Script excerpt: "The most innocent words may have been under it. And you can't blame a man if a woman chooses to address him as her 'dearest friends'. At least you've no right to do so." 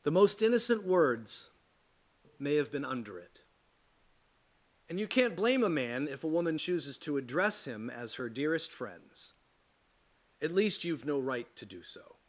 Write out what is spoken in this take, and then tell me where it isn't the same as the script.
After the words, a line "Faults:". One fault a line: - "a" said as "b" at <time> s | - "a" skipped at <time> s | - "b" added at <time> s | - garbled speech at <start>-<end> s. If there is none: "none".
"The most innocent words may have been under it. And you can't blame a man if a woman chooses to address him as her 'dearest friends'. At least you've no right to do so."
Faults:
none